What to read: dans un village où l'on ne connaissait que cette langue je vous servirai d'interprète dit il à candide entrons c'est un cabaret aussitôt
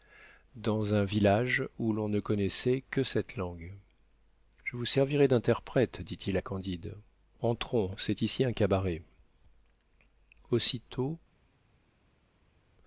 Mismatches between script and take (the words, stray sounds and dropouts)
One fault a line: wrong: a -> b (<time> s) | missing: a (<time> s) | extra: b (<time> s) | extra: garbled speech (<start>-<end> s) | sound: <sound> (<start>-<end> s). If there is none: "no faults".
extra: ici (8.2 s)